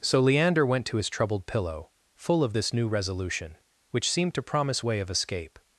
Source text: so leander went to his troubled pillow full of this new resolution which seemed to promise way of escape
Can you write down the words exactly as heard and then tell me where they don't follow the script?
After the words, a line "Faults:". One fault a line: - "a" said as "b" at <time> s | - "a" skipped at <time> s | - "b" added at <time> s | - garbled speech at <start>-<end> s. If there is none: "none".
so leander went to his troubled pillow full of this new resolution which seemed to promise way of escape
Faults:
none